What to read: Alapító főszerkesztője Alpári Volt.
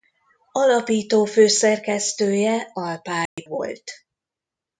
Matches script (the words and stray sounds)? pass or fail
fail